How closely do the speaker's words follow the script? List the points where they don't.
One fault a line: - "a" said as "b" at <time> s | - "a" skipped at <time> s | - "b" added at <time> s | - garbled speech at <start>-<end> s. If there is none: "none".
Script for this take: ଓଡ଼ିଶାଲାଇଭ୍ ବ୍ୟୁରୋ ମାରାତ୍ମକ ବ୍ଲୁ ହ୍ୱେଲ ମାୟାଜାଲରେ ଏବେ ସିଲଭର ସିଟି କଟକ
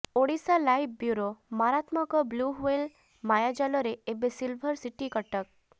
none